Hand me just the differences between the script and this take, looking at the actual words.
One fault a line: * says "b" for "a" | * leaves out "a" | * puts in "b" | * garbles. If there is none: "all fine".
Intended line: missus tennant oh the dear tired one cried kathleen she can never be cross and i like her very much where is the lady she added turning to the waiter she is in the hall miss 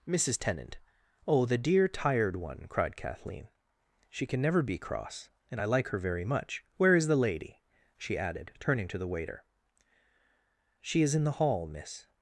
all fine